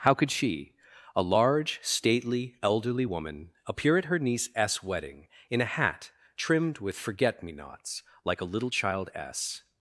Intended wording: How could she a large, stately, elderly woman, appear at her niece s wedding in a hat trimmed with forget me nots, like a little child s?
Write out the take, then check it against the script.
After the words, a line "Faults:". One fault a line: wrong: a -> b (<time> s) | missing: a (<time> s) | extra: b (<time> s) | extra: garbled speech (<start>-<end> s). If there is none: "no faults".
How could she a large, stately, elderly woman, appear at her niece s wedding in a hat trimmed with forget me nots, like a little child s?
Faults:
no faults